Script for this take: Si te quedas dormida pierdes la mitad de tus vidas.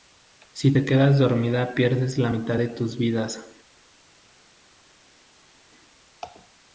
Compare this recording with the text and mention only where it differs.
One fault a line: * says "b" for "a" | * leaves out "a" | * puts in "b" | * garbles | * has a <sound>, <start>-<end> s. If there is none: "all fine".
all fine